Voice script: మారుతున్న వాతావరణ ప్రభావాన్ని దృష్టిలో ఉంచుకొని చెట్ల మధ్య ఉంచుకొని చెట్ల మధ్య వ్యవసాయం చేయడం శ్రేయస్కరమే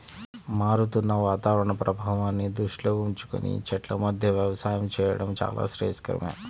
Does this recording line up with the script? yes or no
no